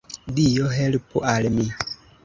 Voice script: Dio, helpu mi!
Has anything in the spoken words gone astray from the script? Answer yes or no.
yes